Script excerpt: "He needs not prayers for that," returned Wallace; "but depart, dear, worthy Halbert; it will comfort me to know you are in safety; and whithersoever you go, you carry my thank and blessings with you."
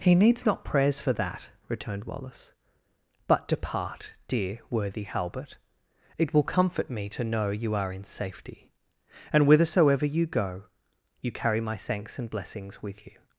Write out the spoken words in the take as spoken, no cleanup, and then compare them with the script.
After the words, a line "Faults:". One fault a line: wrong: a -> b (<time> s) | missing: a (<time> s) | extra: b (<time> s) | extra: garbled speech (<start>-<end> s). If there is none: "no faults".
"He needs not prayers for that," returned Wallace; "but depart, dear, worthy Halbert; it will comfort me to know you are in safety; and whithersoever you go, you carry my thanks and blessings with you."
Faults:
wrong: thank -> thanks (11.8 s)